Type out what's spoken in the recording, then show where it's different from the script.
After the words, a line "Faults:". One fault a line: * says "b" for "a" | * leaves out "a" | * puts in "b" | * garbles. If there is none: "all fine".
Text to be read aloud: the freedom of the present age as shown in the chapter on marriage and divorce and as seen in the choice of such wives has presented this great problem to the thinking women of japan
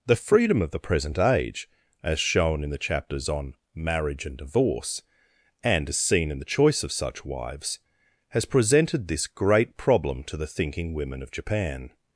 the freedom of the present age as shown in the chapters on marriage and divorce and as seen in the choice of such wives has presented this great problem to the thinking women of japan
Faults:
* says "chapters" for "chapter"